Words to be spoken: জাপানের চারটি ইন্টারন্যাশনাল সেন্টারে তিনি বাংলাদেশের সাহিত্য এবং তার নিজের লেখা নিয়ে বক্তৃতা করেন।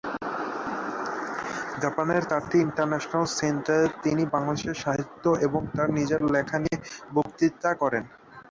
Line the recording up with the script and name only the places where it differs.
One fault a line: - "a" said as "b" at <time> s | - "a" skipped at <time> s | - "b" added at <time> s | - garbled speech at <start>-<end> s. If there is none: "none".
none